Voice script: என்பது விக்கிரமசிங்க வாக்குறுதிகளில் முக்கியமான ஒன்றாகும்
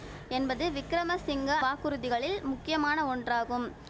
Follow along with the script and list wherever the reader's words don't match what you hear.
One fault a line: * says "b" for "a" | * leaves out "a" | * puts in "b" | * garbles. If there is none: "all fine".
all fine